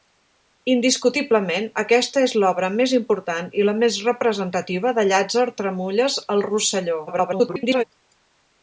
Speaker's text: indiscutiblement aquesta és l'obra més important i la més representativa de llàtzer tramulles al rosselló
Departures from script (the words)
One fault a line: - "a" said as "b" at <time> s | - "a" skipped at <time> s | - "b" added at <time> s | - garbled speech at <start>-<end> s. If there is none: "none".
- garbled speech at 7.1-7.8 s